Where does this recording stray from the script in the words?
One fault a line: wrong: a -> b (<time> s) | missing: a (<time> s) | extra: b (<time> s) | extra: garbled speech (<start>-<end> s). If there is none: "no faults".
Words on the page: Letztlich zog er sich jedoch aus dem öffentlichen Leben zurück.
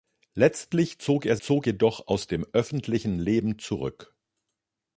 wrong: sich -> zog (1.4 s)